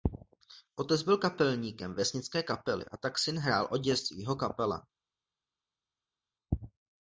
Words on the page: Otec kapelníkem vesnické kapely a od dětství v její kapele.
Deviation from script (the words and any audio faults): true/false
true